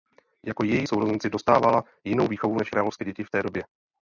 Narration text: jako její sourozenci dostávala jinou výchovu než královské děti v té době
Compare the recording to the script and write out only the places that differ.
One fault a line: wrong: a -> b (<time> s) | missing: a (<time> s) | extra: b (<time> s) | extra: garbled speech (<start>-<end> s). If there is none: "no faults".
no faults